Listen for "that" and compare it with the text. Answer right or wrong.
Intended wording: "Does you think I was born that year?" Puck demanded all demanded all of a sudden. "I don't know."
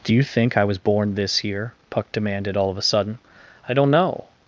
wrong